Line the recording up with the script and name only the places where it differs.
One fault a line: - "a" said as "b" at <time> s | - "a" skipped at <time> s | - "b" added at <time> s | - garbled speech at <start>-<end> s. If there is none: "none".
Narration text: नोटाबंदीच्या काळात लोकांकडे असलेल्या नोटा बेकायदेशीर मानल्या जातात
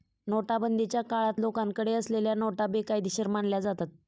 none